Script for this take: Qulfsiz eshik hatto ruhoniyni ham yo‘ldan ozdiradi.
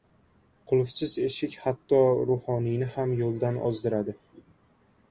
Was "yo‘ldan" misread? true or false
false